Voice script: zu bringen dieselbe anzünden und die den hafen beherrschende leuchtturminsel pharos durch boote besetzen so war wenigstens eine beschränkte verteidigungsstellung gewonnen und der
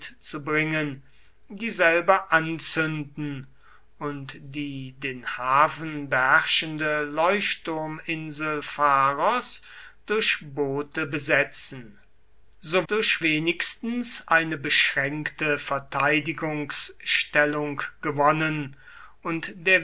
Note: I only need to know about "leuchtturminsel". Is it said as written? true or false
true